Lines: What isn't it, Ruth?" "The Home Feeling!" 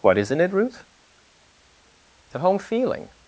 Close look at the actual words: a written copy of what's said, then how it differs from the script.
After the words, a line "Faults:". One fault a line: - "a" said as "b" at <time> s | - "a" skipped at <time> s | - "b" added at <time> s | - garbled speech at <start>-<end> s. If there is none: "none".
What isn't it, Ruth?" "The Home Feeling!"
Faults:
none